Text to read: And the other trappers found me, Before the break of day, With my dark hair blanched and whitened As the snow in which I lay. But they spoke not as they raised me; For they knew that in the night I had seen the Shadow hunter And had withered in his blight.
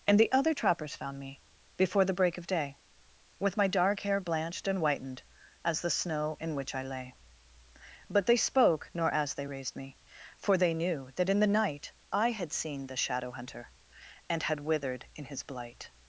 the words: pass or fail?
fail